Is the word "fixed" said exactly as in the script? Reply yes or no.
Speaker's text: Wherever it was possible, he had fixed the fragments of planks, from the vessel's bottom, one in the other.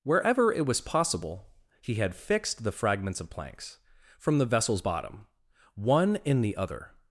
yes